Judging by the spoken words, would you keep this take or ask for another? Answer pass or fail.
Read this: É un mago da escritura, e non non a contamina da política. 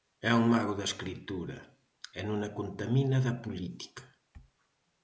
fail